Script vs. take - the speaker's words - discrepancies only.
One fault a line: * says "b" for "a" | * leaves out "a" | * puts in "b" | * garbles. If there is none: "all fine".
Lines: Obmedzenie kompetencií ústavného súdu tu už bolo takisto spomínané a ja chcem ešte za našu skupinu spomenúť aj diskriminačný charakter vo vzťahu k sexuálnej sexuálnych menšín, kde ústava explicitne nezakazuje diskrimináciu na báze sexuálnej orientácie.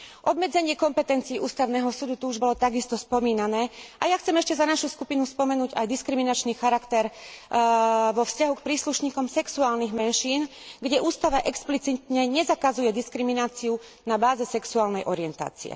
* says "príslušníkom" for "sexuálnej"